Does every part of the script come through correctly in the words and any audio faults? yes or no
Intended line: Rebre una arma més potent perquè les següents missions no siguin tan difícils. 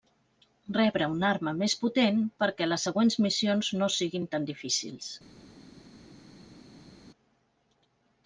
yes